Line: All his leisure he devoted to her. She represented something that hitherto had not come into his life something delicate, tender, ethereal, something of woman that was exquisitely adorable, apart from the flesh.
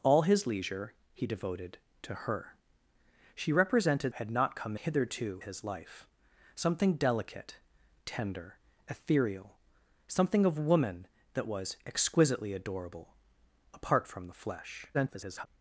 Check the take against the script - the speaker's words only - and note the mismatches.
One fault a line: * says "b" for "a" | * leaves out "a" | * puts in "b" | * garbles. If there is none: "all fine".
* leaves out "something that hitherto"
* says "hitherto" for "into"
* garbles